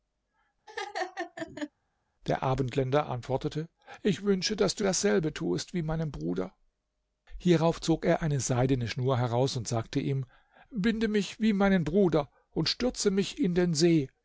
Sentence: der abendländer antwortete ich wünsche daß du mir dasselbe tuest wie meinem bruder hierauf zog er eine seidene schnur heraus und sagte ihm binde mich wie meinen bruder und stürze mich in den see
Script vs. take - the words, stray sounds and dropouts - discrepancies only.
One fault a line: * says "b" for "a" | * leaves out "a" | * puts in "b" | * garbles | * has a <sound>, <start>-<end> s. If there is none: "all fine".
* has a laugh, 0.7-1.7 s
* leaves out "mir"